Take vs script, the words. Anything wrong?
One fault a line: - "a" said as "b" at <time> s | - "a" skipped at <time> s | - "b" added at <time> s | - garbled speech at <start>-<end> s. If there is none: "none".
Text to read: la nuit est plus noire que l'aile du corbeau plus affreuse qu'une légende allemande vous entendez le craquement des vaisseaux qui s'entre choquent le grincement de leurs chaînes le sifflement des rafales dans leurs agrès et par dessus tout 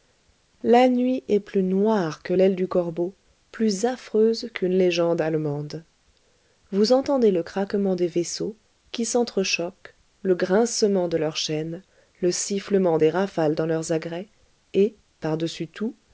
none